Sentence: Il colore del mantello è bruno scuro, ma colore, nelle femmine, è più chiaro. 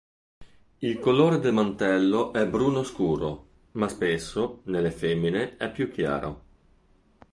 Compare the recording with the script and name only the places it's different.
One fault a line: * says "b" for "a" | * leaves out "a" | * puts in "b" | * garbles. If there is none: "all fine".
* says "spesso" for "colore"